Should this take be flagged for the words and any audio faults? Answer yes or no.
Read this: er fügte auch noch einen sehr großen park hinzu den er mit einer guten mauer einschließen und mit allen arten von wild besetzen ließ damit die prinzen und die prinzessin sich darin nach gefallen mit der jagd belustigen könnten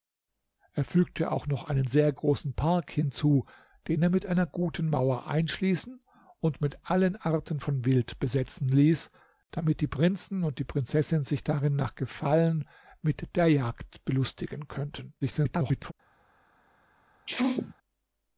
yes